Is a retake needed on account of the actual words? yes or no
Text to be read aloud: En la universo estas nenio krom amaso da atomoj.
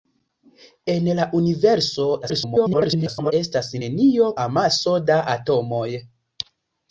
yes